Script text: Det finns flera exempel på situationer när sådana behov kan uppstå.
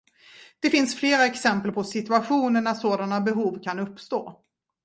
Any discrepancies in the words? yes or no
no